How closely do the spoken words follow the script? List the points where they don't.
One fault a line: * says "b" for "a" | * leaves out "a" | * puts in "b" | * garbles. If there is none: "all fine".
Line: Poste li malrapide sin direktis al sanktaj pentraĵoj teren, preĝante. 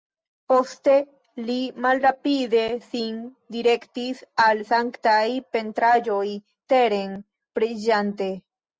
all fine